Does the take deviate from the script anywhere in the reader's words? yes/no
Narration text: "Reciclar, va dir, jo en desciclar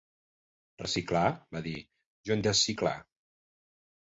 no